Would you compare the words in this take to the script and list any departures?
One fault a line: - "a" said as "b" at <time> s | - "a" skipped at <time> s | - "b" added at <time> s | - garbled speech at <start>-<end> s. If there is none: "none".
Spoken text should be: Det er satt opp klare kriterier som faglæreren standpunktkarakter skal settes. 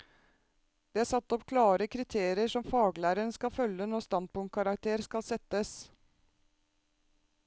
- "skal følge når" added at 3.4 s